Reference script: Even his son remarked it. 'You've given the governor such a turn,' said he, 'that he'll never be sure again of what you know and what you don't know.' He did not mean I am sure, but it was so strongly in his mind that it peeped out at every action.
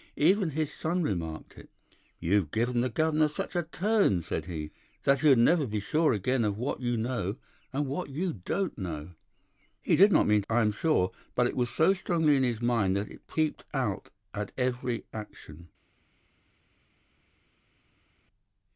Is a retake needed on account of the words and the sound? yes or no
no